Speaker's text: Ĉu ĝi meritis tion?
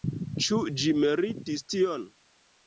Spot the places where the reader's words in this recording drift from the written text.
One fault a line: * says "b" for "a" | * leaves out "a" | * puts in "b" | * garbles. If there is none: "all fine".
all fine